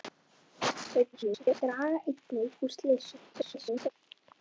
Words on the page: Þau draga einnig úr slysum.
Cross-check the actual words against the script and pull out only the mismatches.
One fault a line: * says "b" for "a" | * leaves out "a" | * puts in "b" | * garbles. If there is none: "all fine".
* garbles
* garbles